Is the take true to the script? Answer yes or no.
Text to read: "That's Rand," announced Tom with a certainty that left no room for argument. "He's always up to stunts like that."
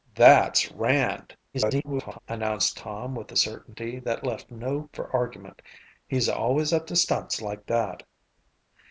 no